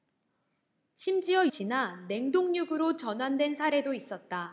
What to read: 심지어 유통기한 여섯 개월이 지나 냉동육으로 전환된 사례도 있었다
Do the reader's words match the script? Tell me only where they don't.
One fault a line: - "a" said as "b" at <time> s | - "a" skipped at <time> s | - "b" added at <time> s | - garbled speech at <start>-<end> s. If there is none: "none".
- "유통기한 여섯 개월이" skipped at 1.5 s